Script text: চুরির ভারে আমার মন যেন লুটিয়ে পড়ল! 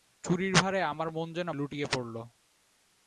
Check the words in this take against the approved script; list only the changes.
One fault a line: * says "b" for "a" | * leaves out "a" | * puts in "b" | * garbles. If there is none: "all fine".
all fine